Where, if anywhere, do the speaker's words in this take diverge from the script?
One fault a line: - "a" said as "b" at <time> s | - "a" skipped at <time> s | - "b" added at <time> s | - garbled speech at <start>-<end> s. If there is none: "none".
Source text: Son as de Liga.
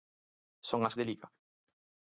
none